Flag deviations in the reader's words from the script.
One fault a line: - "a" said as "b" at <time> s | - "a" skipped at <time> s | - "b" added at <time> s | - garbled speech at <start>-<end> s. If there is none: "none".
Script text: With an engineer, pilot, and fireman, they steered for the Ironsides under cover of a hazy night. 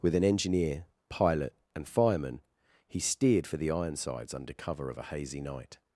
- "they" said as "he" at 2.9 s